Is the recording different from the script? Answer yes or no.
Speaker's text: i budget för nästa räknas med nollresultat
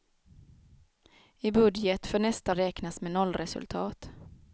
no